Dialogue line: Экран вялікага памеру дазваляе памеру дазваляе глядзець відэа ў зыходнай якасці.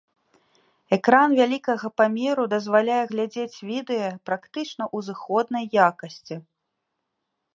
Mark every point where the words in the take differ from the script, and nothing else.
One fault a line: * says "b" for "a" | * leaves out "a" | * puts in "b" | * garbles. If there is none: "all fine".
* leaves out "памеру дазваляе"
* puts in "практычна"